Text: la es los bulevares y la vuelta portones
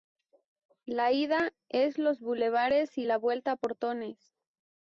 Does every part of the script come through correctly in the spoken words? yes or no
no